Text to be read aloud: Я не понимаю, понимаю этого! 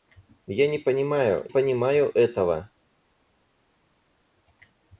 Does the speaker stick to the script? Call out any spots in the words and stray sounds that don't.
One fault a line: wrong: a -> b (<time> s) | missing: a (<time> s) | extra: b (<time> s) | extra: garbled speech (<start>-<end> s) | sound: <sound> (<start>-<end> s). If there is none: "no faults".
no faults